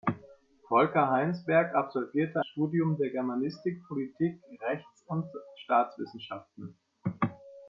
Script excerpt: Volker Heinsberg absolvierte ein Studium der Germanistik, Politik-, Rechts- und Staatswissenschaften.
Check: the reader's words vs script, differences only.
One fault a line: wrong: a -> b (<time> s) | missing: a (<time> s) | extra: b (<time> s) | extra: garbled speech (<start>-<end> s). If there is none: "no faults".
missing: ein (2.4 s)